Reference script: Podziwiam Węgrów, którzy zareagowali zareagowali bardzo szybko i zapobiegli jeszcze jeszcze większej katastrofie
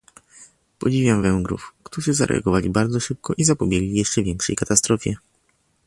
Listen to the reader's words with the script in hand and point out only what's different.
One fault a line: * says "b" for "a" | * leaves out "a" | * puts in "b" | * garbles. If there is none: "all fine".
* leaves out "zareagowali"
* leaves out "jeszcze"